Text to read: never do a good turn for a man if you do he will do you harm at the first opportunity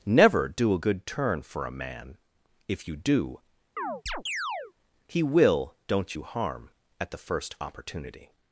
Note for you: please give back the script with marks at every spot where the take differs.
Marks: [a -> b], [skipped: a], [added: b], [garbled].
never do a good turn for a man if you do he will [do -> don't] you harm at the first opportunity